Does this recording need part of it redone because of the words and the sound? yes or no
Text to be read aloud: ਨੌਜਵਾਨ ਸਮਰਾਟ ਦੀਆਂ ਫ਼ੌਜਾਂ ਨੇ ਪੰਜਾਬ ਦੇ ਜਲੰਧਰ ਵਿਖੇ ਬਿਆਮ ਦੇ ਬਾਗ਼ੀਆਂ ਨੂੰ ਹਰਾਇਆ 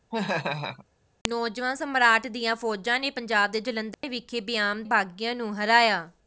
yes